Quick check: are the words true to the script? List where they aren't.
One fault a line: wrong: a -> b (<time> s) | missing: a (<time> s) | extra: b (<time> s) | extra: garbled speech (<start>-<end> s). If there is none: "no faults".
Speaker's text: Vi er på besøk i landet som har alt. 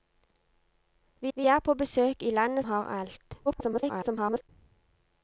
extra: vi (1.3 s)
missing: som (2.6 s)
extra: garbled speech (3.5-4.5 s)